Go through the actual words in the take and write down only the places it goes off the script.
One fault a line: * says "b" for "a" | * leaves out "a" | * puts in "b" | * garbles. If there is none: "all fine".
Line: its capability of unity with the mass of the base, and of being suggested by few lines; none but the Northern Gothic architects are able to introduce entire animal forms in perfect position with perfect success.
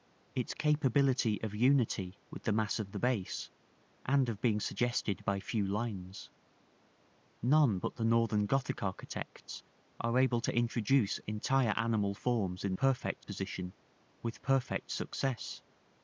all fine